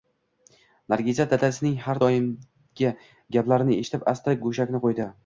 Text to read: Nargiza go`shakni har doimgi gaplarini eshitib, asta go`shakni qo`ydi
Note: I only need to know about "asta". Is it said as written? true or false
true